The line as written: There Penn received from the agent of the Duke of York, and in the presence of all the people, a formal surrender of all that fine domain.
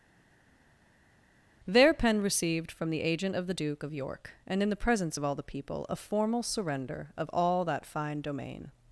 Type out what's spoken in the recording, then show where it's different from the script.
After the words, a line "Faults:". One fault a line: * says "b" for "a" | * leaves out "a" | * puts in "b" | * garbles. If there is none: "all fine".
There Penn received from the agent of the Duke of York, and in the presence of all the people, a formal surrender of all that fine domain.
Faults:
all fine